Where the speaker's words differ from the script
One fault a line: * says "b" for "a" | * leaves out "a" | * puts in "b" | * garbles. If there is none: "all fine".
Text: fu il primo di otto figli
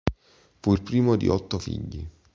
all fine